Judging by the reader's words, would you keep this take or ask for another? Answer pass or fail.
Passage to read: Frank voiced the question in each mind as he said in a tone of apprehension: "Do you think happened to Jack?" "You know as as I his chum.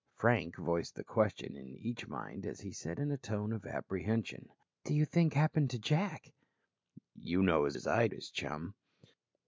pass